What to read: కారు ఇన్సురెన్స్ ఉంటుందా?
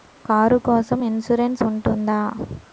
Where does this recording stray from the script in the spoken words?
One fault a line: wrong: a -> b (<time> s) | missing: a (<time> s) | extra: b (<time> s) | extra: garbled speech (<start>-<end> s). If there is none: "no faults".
extra: కోసం (0.6 s)